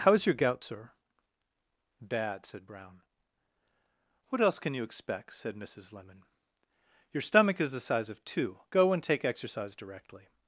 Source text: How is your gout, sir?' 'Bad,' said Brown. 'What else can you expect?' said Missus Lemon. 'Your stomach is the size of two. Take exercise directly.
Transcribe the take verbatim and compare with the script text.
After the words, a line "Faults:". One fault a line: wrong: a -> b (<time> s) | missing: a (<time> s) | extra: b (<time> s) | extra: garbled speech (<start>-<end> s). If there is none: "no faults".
How is your gout, sir?' 'Bad,' said Brown. 'What else can you expect?' said Missus Lemon. 'Your stomach is the size of two. Go and take exercise directly.
Faults:
extra: Go and (8.7 s)